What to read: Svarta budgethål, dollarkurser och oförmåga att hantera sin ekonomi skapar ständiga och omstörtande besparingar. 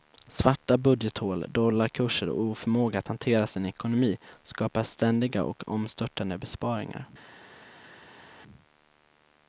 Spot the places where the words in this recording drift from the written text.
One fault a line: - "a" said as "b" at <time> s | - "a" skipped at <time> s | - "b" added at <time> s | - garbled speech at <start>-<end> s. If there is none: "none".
none